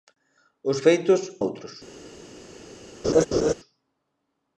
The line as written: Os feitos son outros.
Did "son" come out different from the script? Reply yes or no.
yes